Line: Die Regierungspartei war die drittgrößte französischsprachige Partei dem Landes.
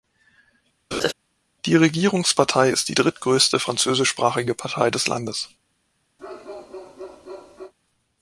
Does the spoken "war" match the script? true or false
false